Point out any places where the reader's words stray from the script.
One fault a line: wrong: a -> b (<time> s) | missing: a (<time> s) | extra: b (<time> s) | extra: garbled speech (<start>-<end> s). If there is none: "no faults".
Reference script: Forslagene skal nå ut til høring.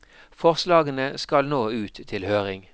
no faults